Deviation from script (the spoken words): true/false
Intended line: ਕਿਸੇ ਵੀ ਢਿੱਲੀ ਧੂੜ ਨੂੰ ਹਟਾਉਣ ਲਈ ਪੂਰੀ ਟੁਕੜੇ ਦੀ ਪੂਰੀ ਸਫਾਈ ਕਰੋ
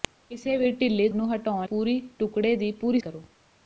true